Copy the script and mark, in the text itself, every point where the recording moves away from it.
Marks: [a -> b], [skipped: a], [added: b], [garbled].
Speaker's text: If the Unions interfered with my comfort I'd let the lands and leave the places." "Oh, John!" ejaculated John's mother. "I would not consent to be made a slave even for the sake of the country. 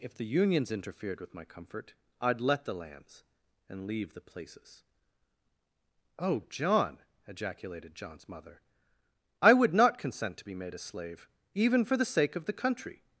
If the Unions interfered with my comfort I'd let the lands and leave the places." "Oh, John!" ejaculated John's mother. "I would not consent to be made a slave even for the sake of the country.